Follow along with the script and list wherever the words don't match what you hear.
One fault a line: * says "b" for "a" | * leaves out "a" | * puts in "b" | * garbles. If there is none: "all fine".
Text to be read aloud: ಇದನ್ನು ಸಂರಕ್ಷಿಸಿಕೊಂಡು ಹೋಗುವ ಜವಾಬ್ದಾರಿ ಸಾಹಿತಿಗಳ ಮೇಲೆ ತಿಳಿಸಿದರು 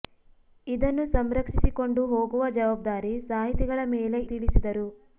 all fine